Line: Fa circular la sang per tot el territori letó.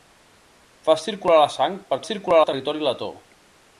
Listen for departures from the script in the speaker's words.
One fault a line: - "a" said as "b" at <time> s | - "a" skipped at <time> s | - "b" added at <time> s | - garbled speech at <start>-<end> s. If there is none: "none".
- "tot" said as "circular" at 2.1 s